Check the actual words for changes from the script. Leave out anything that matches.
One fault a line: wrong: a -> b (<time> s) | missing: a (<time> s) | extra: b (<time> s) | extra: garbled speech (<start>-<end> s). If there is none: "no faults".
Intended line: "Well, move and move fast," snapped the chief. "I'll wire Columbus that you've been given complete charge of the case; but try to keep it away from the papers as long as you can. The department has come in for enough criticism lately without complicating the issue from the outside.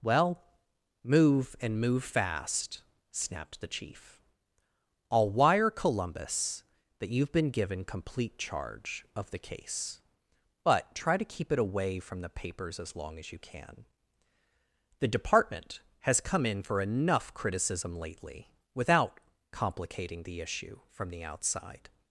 no faults